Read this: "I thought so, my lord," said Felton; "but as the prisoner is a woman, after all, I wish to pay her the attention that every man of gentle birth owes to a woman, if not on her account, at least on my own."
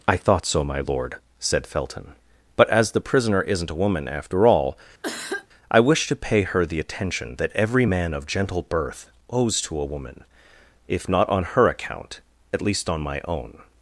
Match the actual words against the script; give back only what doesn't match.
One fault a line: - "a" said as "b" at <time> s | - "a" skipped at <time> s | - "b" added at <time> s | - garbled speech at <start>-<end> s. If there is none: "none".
- "is" said as "isn't" at 3.4 s